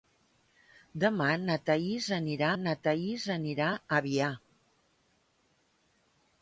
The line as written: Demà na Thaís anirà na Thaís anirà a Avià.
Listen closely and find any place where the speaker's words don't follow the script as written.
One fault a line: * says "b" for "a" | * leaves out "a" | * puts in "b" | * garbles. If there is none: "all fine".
all fine